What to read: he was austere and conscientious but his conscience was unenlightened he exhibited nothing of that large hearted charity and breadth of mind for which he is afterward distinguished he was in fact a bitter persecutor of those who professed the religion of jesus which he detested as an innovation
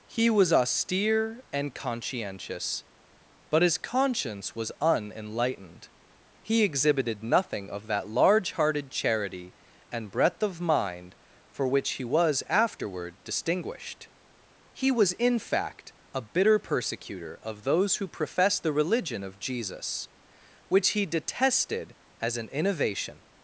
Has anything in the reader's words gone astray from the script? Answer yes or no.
yes